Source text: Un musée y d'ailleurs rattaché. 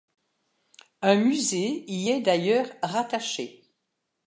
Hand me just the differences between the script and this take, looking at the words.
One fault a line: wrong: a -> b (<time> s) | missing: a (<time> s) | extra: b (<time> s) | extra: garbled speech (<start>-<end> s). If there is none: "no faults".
extra: est (2.1 s)